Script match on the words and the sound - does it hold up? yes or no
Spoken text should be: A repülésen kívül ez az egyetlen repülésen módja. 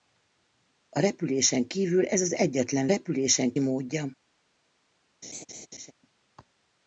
no